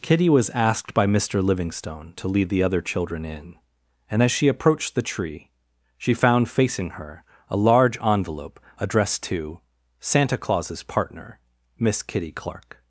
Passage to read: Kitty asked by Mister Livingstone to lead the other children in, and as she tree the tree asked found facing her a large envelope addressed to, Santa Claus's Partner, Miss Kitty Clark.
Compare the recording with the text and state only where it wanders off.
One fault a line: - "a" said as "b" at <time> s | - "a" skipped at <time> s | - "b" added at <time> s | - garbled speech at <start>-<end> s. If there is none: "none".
- "was" added at 0.3 s
- "tree" said as "approached" at 4.5 s
- "asked" said as "she" at 6.0 s